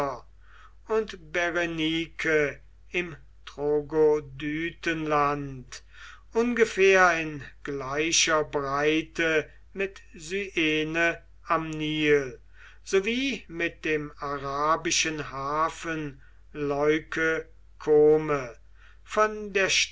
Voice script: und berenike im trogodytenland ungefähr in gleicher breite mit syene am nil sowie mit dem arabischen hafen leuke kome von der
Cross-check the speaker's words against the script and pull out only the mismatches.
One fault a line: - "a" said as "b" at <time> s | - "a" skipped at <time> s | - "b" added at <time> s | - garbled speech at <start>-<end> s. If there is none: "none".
none